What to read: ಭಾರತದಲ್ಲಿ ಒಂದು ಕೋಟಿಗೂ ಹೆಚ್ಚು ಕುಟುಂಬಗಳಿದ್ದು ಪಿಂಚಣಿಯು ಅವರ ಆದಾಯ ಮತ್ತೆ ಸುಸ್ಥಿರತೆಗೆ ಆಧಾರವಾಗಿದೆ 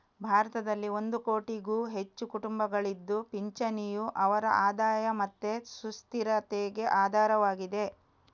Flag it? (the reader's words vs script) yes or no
no